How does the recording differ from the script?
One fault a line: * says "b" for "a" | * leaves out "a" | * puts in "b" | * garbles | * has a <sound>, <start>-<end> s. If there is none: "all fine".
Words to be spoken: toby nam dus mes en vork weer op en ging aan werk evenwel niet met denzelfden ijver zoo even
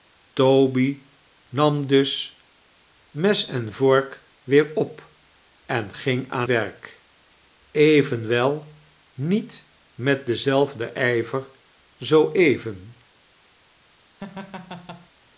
* has a laugh, 14.2-15.1 s